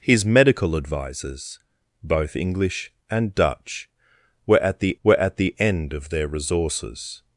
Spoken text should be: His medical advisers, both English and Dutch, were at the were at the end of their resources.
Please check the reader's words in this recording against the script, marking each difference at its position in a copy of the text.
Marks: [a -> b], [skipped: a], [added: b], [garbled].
His medical advisers, both English and Dutch, were at the were at the end of their resources.